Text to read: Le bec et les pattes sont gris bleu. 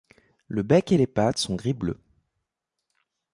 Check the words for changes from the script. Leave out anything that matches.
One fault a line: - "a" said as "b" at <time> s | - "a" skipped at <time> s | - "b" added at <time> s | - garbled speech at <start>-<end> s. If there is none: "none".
none